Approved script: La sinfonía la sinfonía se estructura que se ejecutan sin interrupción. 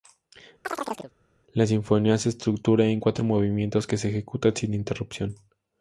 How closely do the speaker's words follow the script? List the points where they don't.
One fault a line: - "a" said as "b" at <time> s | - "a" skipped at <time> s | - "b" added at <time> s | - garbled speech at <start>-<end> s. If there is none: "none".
- "la sinfonía se estructura" said as "se estructura en cuatro movimientos" at 2.2 s